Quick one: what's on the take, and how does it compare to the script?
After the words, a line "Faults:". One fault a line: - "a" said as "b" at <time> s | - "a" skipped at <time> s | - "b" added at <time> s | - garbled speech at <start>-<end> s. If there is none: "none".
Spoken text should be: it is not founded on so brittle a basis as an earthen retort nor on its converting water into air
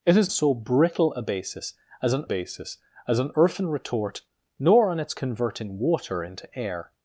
it is so brittle a basis as an basis as an earthen retort nor on its converting water into air
Faults:
- "not founded on so brittle a" said as "so brittle a basis as an" at 0.3 s